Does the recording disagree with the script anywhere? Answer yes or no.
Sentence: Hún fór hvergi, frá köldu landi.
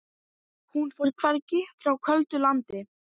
no